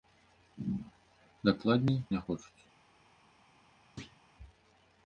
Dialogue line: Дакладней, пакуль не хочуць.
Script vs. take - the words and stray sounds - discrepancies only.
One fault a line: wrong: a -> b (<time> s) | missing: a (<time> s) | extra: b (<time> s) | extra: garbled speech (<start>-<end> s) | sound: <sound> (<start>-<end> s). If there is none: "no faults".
missing: пакуль (2.0 s)
sound: thud (4.0-4.2 s)